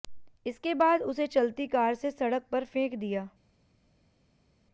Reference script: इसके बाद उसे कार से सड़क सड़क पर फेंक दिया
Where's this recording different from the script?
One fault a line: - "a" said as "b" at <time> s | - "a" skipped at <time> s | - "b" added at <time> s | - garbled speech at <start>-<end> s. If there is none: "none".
- "चलती" added at 1.3 s
- "सड़क" skipped at 2.5 s